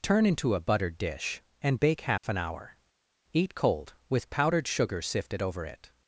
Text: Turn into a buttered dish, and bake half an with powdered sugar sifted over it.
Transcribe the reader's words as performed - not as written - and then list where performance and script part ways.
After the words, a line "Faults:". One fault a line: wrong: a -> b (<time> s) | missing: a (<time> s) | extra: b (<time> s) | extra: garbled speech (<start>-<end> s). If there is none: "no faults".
Turn into a buttered dish, and bake half an hour. Eat cold, with powdered sugar sifted over it.
Faults:
extra: hour Eat cold (2.4 s)